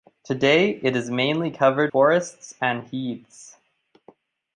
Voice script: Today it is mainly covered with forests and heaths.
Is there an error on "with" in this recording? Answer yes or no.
yes